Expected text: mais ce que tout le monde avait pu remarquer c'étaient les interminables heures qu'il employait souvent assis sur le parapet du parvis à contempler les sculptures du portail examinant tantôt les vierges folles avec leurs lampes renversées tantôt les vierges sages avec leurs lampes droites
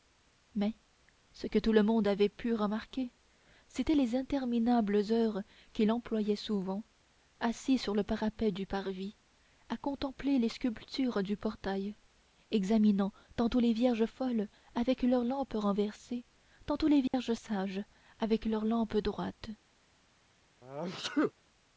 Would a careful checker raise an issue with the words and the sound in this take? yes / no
yes